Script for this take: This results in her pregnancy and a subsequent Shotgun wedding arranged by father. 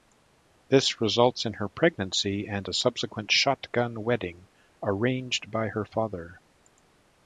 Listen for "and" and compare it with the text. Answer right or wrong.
right